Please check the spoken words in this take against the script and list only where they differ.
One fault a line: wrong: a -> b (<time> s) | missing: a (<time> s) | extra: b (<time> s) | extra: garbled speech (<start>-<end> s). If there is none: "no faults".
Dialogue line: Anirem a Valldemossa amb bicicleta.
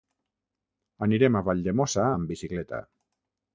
no faults